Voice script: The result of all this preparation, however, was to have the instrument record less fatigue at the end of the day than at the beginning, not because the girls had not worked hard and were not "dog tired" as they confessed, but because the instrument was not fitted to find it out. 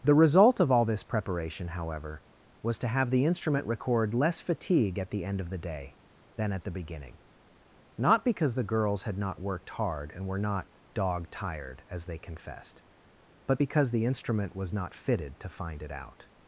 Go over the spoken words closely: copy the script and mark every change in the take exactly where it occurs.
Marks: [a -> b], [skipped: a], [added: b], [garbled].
The result of all this preparation, however, was to have the instrument record less fatigue at the end of the day than at the beginning, not because the girls had not worked hard and were not "dog tired" as they confessed, but because the instrument was not fitted to find it out.